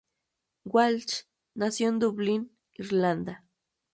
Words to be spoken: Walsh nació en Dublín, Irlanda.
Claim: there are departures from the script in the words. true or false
false